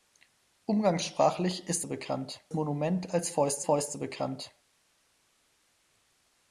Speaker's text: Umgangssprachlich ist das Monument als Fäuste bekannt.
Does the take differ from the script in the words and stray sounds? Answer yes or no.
yes